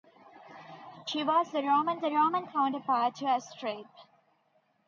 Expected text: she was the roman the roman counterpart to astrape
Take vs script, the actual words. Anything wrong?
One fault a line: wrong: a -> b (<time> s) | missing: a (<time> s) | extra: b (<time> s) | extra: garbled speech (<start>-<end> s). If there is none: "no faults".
no faults